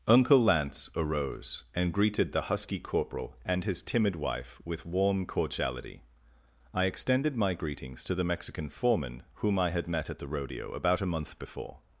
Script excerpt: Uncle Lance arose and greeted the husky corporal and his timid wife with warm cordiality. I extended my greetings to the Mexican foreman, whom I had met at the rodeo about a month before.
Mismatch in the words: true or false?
false